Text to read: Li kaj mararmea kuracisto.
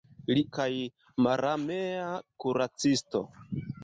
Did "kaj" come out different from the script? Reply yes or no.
no